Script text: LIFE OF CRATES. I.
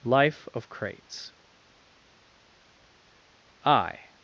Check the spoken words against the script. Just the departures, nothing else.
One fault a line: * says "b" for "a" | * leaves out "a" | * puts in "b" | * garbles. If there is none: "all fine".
all fine